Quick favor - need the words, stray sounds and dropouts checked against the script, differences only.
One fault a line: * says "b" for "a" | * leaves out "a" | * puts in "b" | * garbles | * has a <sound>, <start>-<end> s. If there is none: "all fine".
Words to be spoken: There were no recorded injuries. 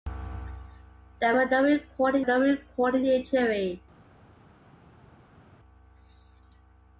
* puts in "no recorded"